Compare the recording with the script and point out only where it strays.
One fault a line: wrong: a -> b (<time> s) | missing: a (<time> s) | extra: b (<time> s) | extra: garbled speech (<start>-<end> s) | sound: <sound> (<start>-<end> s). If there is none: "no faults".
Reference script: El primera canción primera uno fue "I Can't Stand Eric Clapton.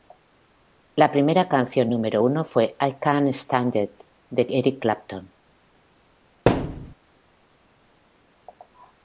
wrong: El -> La (0.9 s)
wrong: primera -> número (1.9 s)
extra: It de (3.8 s)
sound: thud (6.5-6.9 s)